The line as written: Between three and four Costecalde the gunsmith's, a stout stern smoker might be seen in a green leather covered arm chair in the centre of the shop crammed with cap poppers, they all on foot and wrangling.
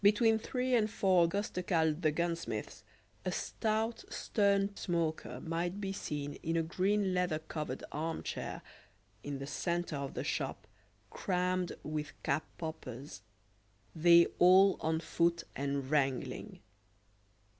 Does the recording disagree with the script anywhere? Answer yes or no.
no